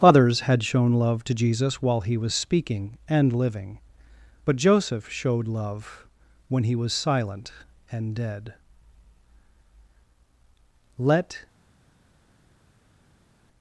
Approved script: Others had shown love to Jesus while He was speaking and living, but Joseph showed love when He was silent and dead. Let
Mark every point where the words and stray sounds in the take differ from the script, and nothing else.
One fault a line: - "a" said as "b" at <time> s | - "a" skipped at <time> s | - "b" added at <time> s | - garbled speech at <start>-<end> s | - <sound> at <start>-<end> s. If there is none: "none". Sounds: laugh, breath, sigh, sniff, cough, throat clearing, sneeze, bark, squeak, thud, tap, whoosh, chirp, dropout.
none